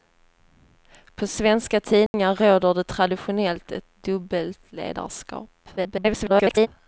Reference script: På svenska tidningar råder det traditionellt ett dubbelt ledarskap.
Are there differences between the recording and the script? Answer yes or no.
yes